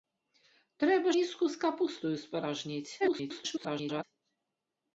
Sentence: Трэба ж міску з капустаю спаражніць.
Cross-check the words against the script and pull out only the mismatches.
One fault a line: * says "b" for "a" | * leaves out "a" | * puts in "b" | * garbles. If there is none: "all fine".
* leaves out "ж"
* garbles